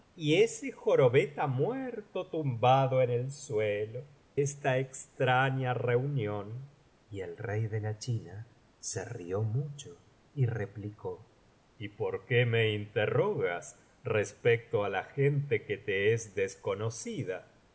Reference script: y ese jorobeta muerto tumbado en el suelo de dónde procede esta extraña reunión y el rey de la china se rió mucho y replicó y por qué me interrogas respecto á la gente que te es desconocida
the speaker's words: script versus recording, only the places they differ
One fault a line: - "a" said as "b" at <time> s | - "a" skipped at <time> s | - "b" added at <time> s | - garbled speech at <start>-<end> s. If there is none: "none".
- "de dónde procede" skipped at 4.0 s